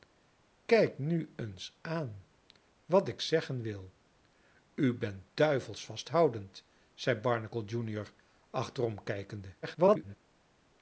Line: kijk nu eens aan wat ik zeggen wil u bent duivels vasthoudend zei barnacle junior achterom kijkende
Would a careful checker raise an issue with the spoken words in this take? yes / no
yes